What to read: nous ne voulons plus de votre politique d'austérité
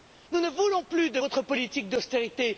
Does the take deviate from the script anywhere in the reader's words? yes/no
no